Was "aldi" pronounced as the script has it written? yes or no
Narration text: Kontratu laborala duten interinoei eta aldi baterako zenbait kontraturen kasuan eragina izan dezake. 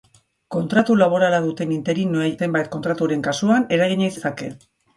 no